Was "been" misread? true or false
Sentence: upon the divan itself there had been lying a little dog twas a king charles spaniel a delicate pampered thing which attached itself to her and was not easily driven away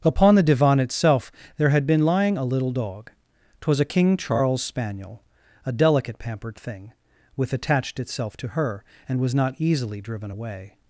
false